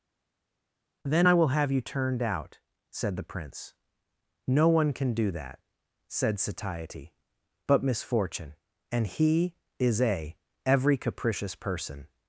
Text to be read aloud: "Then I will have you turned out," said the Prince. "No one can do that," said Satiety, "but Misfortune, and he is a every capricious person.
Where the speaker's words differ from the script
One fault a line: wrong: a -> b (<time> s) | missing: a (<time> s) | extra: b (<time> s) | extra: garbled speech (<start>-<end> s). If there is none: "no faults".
no faults